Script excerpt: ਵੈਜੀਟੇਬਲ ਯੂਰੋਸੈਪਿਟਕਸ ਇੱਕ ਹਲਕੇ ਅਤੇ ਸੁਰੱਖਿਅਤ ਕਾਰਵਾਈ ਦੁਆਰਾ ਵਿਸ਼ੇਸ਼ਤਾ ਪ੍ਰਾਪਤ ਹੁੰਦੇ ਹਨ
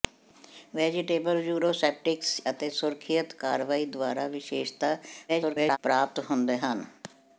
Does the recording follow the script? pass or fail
fail